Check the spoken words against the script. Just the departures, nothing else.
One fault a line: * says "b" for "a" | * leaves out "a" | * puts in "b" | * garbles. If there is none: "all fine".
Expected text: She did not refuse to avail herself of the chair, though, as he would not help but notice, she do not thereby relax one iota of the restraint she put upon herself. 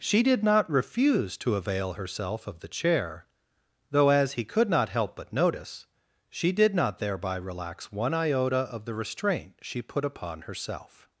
* says "could" for "would"
* says "did" for "do"